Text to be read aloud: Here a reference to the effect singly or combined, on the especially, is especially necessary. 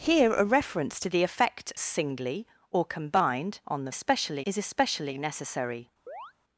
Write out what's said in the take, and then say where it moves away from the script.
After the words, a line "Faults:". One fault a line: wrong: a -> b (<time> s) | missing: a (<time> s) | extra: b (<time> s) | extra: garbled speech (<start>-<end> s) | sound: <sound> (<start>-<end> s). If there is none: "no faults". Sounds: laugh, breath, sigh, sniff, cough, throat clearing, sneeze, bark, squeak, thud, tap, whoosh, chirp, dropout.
Here a reference to the effect singly or combined, on the especially, is especially necessary.
Faults:
sound: chirp (6.1-6.3 s)